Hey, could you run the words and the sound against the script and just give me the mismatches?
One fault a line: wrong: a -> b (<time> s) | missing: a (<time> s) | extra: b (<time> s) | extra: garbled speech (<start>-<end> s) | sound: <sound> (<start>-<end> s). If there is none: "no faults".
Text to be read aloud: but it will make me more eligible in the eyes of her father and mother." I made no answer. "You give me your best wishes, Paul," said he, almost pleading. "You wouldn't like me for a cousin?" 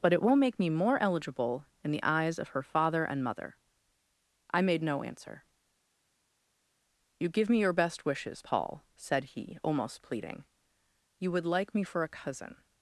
wrong: wouldn't -> would (11.3 s)